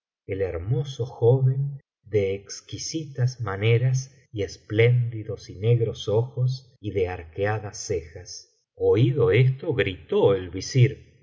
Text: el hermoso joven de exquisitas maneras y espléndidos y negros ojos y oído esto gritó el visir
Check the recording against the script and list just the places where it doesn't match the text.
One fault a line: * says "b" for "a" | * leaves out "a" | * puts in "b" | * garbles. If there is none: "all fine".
* puts in "de arqueadas cejas"